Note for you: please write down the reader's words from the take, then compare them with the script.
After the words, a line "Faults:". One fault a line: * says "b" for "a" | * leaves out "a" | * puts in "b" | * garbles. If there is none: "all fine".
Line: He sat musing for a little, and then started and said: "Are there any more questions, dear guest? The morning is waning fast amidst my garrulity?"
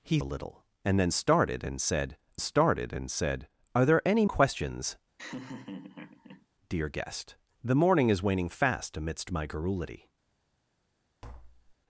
He a little, and then started and said started and said: "Are there any questions, dear guest? The morning is waning fast amidst my garrulity?"
Faults:
* leaves out "sat musing for"
* puts in "started and said"
* leaves out "more"